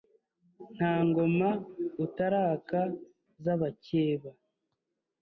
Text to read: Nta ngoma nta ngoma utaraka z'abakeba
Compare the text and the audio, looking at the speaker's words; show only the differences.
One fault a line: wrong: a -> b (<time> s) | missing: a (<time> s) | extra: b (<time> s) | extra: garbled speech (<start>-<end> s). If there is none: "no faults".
missing: nta ngoma (1.5 s)